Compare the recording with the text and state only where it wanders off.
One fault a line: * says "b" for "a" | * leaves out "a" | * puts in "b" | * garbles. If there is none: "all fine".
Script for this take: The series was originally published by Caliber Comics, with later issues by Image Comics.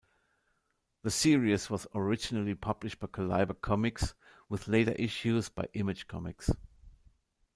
all fine